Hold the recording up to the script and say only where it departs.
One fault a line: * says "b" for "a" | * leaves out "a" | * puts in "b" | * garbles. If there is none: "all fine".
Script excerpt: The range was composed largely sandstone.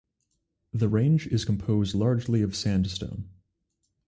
* says "is" for "was"
* puts in "of"